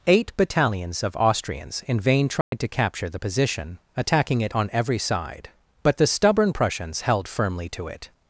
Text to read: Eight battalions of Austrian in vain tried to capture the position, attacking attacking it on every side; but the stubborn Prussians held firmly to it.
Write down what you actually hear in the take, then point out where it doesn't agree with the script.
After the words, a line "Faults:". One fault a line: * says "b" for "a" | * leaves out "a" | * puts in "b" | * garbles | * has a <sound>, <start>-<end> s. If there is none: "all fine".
Eight battalions of Austrians in vain tried to capture the position, attacking it on every side; but the stubborn Prussians held firmly to it.
Faults:
* says "Austrians" for "Austrian"
* has a dropout, 2.4-2.5 s
* leaves out "attacking"